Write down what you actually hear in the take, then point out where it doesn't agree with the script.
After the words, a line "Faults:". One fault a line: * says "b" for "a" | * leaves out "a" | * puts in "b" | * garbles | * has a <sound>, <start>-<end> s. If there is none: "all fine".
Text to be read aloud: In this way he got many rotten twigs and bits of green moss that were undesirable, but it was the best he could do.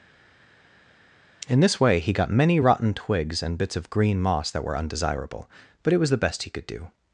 In this way he got many rotten twigs and bits of green moss that were undesirable, but it was the best he could do.
Faults:
all fine